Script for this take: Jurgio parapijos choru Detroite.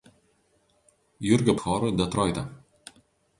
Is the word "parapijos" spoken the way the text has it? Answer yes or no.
no